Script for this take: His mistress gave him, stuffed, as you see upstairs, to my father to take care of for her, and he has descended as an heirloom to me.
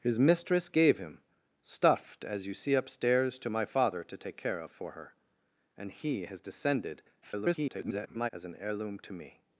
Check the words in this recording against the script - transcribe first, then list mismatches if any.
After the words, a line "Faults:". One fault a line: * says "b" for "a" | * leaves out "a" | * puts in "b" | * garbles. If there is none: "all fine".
His mistress gave him, stuffed, as you see upstairs, to my father to take care of for her, and he has descended [garbled] as an heirloom to me.
Faults:
* garbles